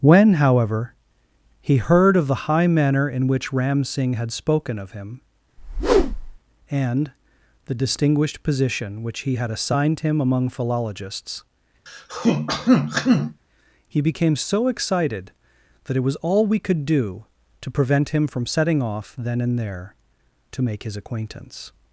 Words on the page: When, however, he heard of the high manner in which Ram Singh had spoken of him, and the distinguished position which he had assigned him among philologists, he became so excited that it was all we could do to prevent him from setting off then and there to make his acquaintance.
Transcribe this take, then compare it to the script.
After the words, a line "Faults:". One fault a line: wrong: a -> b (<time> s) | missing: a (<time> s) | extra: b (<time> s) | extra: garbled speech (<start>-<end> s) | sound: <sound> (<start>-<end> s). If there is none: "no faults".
When, however, he heard of the high manner in which Ram Singh had spoken of him, and the distinguished position which he had assigned him among philologists, he became so excited that it was all we could do to prevent him from setting off then and there to make his acquaintance.
Faults:
sound: whoosh (5.6-6.4 s)
sound: throat clearing (11.9-13.4 s)